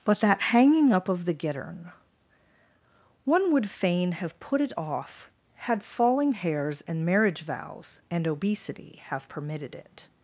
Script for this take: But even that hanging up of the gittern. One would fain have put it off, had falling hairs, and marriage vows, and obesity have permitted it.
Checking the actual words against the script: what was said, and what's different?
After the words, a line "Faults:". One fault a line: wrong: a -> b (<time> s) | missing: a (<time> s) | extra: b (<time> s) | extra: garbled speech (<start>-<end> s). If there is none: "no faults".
But that hanging up of the gittern. One would fain have put it off, had falling hairs, and marriage vows, and obesity have permitted it.
Faults:
missing: even (0.2 s)